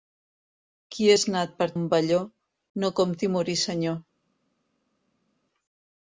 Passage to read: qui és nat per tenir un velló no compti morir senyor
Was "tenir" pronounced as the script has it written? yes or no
no